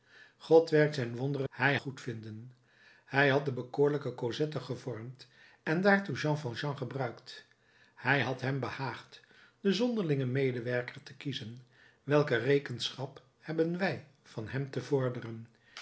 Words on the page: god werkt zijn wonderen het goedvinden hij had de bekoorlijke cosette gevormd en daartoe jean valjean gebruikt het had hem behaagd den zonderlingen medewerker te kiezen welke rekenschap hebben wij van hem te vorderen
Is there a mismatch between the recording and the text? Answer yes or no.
no